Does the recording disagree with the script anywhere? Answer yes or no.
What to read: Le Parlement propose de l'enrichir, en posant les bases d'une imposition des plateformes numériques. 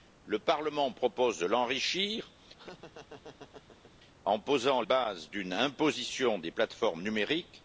yes